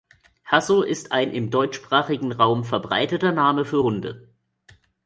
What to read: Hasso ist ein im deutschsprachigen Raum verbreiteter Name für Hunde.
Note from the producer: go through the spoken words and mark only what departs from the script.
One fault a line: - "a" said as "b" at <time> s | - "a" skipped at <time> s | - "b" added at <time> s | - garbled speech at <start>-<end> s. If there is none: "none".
none